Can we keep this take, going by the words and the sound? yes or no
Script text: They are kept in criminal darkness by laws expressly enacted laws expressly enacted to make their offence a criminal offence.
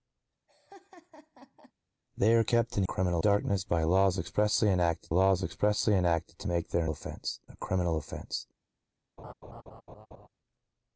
no